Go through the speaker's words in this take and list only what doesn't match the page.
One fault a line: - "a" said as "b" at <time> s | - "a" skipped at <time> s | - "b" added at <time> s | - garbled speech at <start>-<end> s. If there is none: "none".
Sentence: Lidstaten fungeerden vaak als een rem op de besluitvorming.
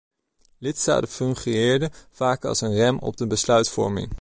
none